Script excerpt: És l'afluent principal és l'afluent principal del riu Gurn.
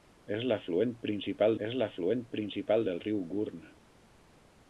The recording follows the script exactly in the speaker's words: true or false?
true